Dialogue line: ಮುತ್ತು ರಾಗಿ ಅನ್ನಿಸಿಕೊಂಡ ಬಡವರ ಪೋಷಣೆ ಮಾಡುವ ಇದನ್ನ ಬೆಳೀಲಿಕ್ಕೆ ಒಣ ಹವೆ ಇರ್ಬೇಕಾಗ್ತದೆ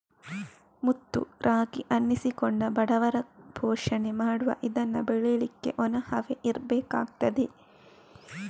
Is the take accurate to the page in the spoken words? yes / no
yes